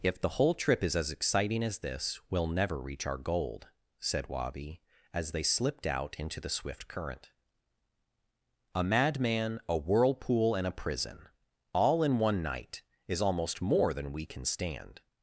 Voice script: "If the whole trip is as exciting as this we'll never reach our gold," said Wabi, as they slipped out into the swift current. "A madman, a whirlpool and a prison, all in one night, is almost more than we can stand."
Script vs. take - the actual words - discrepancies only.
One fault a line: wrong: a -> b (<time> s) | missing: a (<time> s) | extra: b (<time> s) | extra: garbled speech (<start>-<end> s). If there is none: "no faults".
no faults